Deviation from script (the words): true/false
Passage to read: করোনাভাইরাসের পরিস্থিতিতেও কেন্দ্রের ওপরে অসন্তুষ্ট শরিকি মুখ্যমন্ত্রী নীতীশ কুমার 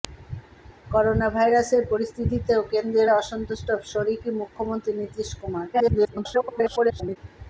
true